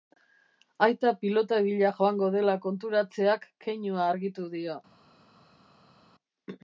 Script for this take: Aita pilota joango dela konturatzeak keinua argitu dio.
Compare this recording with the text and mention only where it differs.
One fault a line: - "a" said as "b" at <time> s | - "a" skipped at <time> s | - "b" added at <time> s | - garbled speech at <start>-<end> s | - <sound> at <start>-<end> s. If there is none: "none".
- "bila" added at 1.7 s